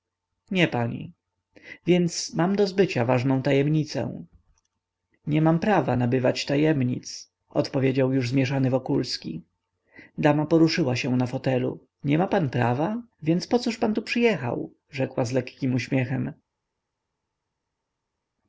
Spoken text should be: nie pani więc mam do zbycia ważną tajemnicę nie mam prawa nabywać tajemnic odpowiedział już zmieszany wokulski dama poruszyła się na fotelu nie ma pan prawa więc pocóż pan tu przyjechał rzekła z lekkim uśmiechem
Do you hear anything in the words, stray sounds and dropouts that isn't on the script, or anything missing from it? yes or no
no